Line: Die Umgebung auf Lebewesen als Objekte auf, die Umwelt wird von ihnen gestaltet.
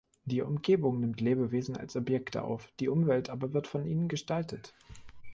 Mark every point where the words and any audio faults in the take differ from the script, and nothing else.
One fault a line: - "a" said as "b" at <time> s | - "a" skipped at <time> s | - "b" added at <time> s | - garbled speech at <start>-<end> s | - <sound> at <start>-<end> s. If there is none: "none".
- "auf" said as "nimmt" at 1.0 s
- "aber" added at 3.3 s